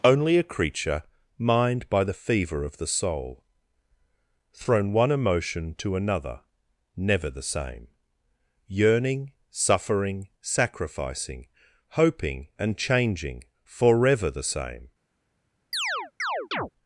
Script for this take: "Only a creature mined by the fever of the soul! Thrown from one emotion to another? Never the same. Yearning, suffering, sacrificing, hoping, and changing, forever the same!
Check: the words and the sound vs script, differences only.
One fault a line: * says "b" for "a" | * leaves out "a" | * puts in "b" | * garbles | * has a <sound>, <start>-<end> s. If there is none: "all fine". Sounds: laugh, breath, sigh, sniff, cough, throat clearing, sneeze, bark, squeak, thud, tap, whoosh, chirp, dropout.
* leaves out "from"
* has a chirp, 15.7-16.7 s